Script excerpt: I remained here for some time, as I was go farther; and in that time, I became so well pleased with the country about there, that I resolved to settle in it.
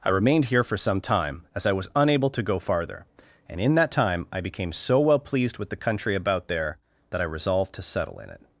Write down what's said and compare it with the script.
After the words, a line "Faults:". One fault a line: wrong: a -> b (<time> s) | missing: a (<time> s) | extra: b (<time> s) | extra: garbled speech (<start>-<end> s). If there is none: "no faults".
I remained here for some time, as I was unable to go farther; and in that time, I became so well pleased with the country about there, that I resolved to settle in it.
Faults:
extra: unable to (1.9 s)